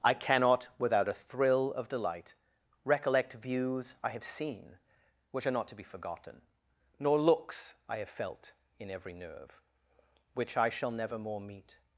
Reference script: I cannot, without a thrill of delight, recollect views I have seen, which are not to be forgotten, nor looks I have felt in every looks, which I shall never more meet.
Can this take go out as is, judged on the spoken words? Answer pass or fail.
fail